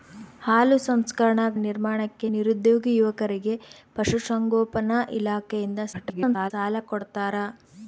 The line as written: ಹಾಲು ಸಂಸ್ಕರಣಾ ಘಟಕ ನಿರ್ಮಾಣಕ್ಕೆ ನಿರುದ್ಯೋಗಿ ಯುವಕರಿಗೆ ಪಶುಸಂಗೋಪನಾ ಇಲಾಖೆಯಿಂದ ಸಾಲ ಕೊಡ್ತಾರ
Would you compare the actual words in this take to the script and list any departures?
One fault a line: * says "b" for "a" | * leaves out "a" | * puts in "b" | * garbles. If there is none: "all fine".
* leaves out "ಘಟಕ"
* garbles